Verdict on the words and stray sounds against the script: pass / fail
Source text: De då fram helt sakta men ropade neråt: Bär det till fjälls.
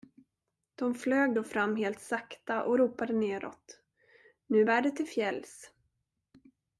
fail